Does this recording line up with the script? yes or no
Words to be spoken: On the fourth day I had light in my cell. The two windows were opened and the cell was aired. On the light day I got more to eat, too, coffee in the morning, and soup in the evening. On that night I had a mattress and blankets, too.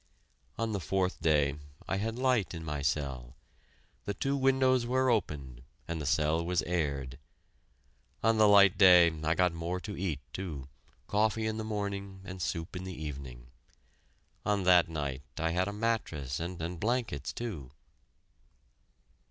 no